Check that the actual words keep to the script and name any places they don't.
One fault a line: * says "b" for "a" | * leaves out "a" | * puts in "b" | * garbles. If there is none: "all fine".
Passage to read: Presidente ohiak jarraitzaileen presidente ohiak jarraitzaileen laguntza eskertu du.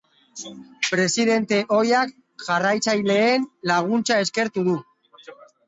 * leaves out "presidente ohiak jarraitzaileen"